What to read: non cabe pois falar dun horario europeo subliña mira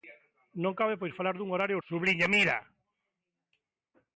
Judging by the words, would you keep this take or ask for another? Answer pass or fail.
fail